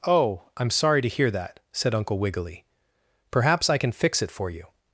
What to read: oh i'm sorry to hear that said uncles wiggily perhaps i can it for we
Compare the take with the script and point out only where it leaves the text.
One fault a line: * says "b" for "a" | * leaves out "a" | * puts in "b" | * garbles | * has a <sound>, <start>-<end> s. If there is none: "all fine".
* says "uncle" for "uncles"
* puts in "fix"
* says "you" for "we"